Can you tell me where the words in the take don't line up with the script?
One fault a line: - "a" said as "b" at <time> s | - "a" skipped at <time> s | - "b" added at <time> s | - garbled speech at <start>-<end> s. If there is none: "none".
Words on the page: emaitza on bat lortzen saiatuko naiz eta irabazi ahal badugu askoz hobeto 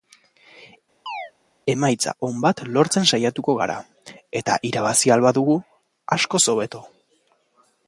- "naiz" said as "gara" at 3.6 s